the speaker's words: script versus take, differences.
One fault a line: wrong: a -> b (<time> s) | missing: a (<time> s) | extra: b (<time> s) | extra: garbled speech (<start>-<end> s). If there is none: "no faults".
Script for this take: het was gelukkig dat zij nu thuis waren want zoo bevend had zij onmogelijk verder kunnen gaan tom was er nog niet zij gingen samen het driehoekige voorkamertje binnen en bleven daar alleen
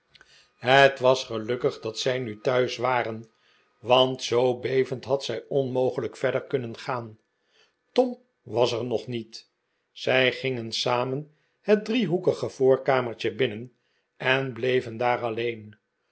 no faults